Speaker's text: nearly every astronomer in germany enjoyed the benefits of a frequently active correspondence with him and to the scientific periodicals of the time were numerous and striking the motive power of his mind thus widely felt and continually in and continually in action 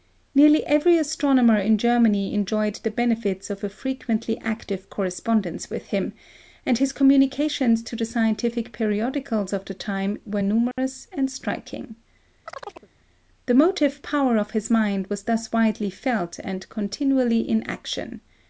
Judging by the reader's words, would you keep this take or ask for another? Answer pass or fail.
fail